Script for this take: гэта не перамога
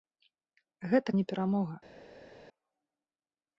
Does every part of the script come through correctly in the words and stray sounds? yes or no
yes